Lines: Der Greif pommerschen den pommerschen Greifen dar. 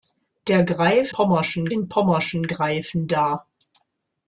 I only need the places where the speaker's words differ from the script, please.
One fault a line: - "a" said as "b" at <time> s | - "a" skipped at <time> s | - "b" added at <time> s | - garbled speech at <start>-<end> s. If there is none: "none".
none